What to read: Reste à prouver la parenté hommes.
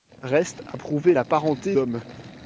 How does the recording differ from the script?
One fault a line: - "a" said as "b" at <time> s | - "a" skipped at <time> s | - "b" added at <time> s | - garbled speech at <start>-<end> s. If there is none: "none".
none